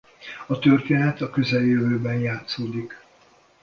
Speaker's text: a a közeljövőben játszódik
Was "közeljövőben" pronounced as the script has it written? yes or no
yes